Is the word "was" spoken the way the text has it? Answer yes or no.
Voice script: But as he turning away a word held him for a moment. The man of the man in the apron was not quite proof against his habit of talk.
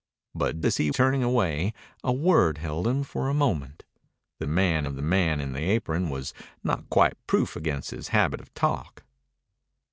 yes